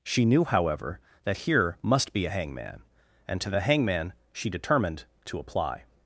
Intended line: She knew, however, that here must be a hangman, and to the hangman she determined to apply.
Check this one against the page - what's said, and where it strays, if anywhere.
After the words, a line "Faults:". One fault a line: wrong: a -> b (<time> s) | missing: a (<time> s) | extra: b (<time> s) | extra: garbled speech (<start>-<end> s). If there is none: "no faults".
She knew, however, that here must be a hangman, and to the hangman she determined to apply.
Faults:
no faults